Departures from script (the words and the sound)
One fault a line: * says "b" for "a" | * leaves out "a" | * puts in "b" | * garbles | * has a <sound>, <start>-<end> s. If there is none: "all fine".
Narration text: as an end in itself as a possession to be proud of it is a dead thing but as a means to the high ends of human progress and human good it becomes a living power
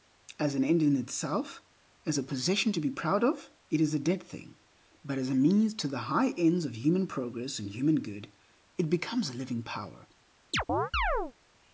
* has a chirp, 10.5-11.3 s